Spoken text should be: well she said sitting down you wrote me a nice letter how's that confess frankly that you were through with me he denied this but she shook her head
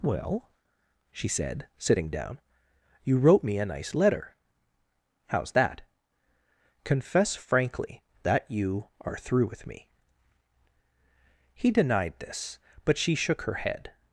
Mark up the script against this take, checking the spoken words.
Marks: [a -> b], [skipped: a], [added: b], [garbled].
well she said sitting down you wrote me a nice letter how's that confess frankly that you [were -> are] through with me he denied this but she shook her head